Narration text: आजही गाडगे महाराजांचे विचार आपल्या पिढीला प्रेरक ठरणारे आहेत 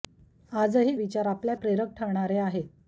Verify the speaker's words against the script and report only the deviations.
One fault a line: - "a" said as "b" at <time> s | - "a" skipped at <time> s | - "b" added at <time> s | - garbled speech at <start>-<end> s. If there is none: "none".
- "गाडगे महाराजांचे" skipped at 0.9 s
- "पिढीला" skipped at 1.5 s